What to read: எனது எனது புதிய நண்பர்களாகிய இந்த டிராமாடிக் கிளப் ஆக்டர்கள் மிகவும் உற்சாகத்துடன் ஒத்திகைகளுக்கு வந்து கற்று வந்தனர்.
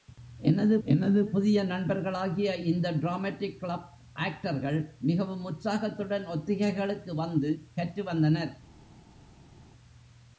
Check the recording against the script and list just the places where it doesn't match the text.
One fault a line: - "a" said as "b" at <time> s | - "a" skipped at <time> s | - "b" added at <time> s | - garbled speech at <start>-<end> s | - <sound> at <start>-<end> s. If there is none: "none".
none